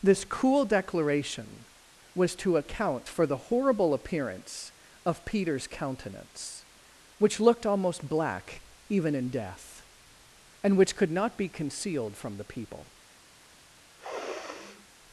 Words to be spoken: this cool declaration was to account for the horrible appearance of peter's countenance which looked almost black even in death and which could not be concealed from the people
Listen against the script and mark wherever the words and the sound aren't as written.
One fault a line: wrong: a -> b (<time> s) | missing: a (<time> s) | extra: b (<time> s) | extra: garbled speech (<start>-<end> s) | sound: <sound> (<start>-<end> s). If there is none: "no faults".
sound: sniff (14.0-14.9 s)